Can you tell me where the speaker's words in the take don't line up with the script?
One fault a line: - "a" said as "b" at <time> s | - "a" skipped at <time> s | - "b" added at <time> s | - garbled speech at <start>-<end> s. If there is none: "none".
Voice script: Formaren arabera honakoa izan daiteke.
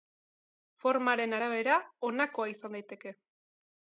none